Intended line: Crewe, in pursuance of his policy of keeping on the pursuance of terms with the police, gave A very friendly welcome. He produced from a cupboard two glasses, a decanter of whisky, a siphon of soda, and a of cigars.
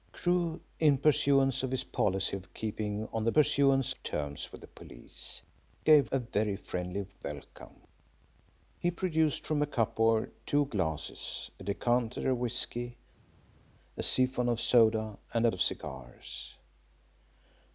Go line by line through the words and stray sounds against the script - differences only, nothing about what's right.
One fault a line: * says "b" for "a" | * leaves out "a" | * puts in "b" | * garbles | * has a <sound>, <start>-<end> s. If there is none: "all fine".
all fine